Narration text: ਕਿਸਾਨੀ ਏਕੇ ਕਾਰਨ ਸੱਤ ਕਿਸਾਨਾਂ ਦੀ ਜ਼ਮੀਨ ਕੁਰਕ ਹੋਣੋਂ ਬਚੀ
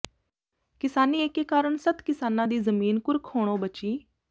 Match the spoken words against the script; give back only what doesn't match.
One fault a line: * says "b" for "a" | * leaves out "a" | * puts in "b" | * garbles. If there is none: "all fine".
all fine